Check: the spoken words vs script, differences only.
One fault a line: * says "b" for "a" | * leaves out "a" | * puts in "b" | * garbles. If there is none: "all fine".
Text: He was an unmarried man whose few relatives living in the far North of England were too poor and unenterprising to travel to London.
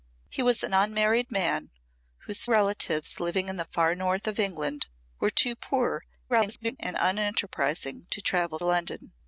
* leaves out "few"
* garbles
* leaves out "to"